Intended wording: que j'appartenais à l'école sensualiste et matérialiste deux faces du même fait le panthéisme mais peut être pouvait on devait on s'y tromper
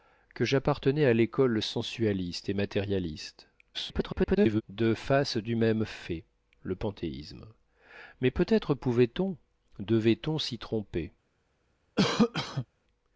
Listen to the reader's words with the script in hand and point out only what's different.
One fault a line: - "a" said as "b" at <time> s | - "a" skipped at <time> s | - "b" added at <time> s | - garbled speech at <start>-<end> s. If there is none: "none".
- garbled speech at 3.7-4.6 s